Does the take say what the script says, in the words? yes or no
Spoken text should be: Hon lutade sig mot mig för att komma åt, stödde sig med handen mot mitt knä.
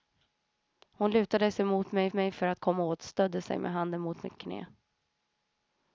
no